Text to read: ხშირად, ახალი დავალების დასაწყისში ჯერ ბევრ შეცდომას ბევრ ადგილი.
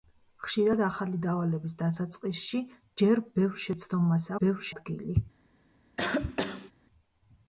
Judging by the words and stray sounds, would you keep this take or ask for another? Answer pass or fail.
fail